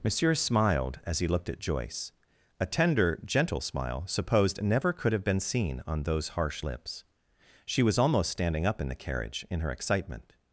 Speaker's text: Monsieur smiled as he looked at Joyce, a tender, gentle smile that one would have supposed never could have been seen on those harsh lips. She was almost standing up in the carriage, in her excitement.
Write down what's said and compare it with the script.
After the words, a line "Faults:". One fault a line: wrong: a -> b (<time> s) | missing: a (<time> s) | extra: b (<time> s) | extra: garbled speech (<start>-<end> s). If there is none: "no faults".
Monsieur smiled as he looked at Joyce, a tender, gentle smile supposed never could have been seen on those harsh lips. She was almost standing up in the carriage, in her excitement.
Faults:
missing: that one would have (4.0 s)